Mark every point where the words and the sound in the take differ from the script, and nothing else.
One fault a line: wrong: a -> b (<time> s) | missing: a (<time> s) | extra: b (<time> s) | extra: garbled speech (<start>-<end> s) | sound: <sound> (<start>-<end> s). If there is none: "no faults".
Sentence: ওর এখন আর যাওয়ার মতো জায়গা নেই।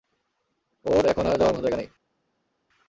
no faults